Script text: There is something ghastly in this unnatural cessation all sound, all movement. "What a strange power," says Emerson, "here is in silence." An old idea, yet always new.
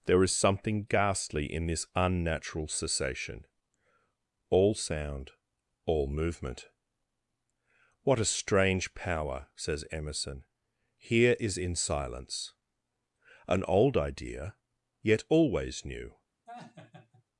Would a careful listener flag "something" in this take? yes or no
no